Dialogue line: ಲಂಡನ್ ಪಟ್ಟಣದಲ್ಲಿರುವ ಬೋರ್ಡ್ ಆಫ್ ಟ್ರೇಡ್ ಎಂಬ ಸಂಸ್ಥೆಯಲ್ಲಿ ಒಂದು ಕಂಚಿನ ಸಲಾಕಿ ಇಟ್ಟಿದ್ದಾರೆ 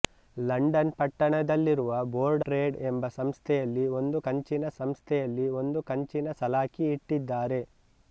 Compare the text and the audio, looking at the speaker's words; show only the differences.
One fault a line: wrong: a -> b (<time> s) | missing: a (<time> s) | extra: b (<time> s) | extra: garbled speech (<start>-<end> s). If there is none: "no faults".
missing: ಆಫ್ (2.5 s)
extra: ಸಂಸ್ಥೆಯಲ್ಲಿ ಒಂದು ಕಂಚಿನ (4.8 s)